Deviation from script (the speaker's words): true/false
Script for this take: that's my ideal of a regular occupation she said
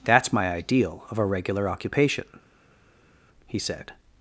true